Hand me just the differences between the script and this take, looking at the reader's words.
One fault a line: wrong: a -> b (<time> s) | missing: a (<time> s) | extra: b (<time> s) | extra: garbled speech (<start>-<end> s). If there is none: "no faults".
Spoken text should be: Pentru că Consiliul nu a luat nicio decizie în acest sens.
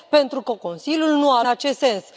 missing: luat nicio decizie (1.4 s)